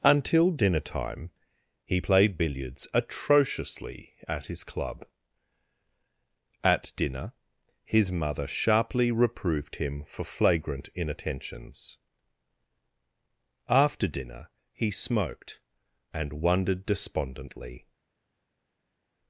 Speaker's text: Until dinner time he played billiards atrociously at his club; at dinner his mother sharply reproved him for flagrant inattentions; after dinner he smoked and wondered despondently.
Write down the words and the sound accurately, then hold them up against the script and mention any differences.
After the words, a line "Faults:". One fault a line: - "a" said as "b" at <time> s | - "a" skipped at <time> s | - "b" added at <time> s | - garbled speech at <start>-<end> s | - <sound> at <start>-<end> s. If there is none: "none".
Until dinner time he played billiards atrociously at his club; at dinner his mother sharply reproved him for flagrant inattentions; after dinner he smoked and wondered despondently.
Faults:
none